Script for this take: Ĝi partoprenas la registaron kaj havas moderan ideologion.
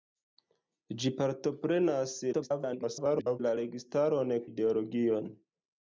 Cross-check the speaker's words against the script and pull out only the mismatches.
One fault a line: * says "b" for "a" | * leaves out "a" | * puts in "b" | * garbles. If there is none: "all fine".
* garbles
* leaves out "kaj havas moderan"